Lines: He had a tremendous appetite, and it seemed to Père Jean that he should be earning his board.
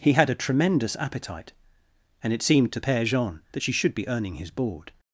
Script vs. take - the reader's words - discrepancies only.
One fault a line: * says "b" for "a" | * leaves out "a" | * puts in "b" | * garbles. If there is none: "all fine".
* says "she" for "he"